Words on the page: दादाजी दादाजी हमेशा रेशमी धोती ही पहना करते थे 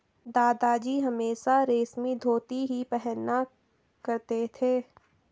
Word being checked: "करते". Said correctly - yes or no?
yes